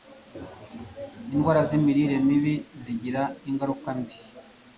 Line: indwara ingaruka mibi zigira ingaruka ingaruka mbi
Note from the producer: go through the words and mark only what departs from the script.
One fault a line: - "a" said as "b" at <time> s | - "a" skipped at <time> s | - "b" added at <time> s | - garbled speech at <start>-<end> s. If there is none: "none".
- "ingaruka" said as "z'imirire" at 1.7 s
- "ingaruka" skipped at 3.9 s